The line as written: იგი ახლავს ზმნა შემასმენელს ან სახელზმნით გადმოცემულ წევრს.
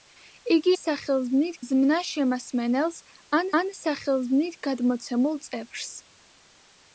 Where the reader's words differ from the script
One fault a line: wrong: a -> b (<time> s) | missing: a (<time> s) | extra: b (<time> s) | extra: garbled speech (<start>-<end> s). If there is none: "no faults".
wrong: ახლავს -> სახელზმნით (0.8 s)
extra: ან (3.6 s)